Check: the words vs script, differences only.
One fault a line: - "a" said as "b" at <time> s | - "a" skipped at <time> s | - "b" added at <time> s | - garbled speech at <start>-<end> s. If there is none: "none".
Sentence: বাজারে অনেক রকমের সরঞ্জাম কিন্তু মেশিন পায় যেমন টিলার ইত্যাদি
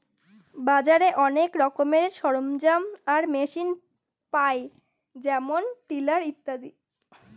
- "কিন্তু" said as "আর" at 3.1 s